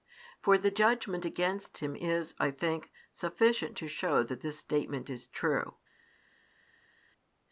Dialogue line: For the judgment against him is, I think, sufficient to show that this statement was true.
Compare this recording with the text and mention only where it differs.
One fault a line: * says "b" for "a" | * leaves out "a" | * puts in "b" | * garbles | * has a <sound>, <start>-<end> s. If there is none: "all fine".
* says "is" for "was"